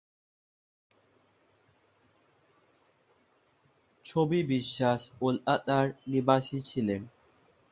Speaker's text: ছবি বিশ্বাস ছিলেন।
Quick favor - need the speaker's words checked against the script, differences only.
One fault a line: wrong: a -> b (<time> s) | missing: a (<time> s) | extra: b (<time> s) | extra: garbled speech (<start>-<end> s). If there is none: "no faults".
extra: কলকাতার নিবাসী (5.2 s)